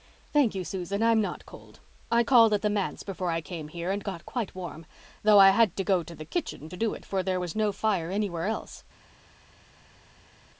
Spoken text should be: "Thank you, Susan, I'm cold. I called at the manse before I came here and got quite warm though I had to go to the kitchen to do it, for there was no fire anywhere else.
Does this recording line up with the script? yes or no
no